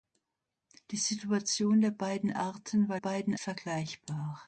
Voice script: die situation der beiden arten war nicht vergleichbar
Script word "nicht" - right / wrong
wrong